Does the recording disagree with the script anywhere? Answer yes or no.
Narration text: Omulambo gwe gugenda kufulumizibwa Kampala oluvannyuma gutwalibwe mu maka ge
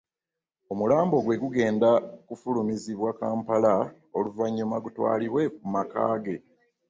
no